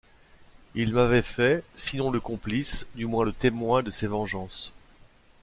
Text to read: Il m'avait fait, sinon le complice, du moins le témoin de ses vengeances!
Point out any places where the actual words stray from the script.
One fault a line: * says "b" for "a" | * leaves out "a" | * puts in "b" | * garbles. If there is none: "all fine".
all fine